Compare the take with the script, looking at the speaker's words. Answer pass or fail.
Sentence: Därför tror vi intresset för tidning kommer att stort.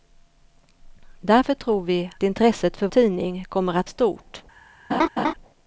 pass